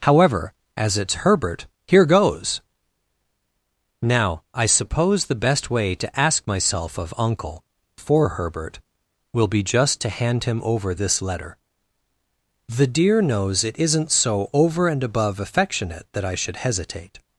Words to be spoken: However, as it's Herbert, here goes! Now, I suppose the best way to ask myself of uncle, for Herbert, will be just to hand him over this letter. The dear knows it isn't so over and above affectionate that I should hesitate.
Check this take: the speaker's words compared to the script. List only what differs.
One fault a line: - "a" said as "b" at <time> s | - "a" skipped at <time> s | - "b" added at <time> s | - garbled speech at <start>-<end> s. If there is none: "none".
none